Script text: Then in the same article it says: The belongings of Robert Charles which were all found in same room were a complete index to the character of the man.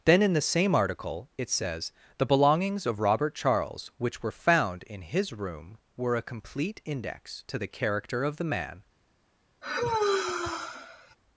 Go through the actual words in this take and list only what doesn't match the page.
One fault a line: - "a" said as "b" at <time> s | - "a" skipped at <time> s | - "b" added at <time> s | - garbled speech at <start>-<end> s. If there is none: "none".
- "all" skipped at 4.3 s
- "same" said as "his" at 5.0 s